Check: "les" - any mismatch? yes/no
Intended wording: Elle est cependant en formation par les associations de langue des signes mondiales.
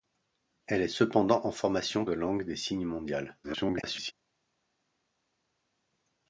yes